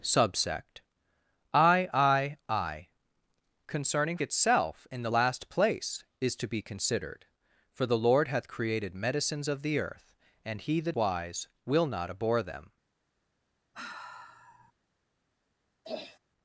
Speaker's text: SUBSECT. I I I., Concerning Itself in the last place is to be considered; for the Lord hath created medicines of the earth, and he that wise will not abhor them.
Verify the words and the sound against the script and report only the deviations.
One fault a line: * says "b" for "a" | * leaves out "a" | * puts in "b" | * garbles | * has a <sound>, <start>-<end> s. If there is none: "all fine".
* has a sigh, 13.7-14.7 s
* has a throat clearing, 15.8-16.2 s